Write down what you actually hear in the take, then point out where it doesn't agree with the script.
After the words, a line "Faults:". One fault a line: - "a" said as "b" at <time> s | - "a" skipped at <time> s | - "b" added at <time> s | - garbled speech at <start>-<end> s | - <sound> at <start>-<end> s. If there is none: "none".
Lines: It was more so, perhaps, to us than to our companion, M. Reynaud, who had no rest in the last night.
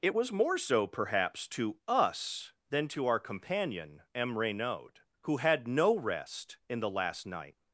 It was more so, perhaps, to us than to our companion, M. Reynaud, who had no rest in the last night.
Faults:
none